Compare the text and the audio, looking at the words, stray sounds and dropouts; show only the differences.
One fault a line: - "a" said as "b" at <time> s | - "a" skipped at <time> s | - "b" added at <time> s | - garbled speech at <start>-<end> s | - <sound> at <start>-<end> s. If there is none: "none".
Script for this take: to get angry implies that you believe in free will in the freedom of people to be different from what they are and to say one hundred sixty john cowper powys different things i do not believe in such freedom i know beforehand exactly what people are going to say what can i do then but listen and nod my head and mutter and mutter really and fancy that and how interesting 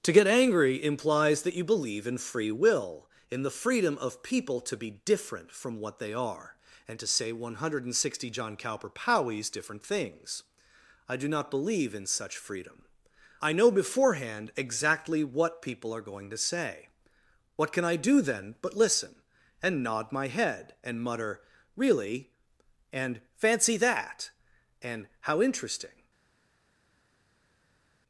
- "and mutter" skipped at 21.4 s